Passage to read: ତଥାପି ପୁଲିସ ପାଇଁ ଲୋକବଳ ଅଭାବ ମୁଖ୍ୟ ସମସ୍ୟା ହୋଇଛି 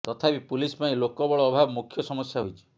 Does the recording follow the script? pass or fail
pass